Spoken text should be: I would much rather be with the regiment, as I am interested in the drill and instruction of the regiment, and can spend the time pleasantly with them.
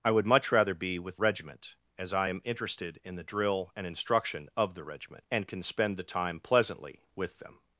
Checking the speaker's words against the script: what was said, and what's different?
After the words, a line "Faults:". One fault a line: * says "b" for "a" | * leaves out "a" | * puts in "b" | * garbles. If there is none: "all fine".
I would much rather be with regiment, as I am interested in the drill and instruction of the regiment, and can spend the time pleasantly with them.
Faults:
* leaves out "the"